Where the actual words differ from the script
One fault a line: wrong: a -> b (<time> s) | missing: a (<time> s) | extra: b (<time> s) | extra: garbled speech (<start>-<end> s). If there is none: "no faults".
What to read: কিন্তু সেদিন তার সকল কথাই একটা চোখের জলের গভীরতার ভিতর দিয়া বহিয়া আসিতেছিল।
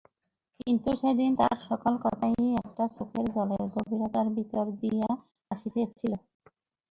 missing: বহিয়া (5.1 s)